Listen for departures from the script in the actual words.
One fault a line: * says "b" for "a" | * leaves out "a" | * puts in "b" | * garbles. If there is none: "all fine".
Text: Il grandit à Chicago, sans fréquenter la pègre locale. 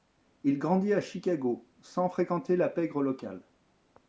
all fine